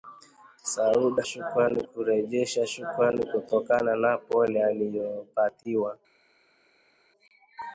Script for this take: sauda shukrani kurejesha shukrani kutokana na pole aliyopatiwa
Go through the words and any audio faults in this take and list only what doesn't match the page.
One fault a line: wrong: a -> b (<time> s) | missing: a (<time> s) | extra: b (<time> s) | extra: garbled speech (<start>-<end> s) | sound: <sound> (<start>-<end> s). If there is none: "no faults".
no faults